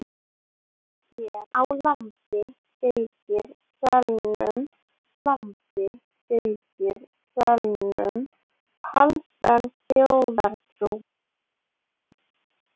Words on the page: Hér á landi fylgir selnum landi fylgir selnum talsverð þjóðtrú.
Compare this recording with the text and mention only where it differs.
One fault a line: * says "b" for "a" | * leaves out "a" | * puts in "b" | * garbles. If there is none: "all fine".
all fine